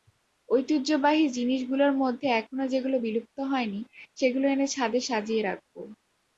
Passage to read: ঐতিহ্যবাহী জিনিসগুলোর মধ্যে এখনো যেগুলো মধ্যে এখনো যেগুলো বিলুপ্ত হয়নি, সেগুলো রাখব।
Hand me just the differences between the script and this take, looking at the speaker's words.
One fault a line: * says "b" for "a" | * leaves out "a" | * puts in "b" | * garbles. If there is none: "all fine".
* says "বিলুপ্ত হয়নি সেগুলো এনে ছাদে সাজিয়ে" for "মধ্যে এখনো যেগুলো বিলুপ্ত হয়নি সেগুলো"